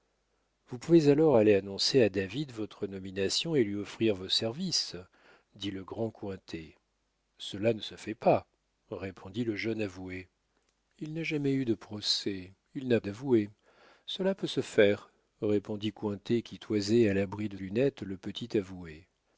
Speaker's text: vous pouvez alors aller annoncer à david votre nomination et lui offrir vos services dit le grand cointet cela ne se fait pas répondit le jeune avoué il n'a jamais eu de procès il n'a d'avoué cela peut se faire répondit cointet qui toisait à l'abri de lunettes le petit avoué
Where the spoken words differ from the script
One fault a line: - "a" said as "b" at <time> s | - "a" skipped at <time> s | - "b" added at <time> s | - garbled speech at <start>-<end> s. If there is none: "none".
none